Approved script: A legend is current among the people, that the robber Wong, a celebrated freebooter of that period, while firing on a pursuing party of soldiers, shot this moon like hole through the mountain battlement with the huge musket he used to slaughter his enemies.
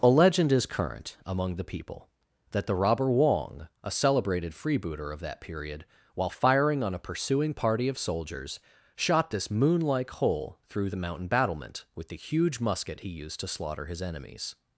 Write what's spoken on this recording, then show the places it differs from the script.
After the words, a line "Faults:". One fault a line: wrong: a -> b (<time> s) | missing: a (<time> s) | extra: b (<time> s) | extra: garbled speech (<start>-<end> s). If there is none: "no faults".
A legend is current among the people, that the robber Wong, a celebrated freebooter of that period, while firing on a pursuing party of soldiers, shot this moon like hole through the mountain battlement with the huge musket he used to slaughter his enemies.
Faults:
no faults